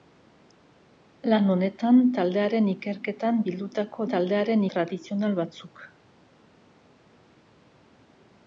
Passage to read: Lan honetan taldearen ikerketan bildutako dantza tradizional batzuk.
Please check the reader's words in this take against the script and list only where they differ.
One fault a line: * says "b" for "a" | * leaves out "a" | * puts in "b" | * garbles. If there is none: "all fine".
* says "taldearen" for "dantza"